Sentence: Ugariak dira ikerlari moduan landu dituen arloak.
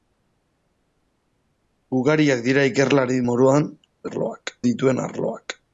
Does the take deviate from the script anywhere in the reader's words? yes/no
yes